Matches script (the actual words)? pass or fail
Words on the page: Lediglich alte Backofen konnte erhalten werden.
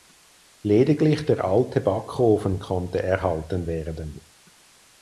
fail